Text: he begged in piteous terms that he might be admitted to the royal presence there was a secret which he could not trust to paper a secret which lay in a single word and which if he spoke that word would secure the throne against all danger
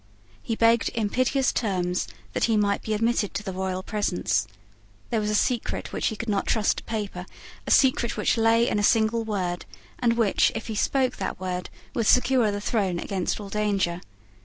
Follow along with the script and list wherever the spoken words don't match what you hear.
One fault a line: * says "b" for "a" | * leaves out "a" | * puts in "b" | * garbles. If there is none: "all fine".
all fine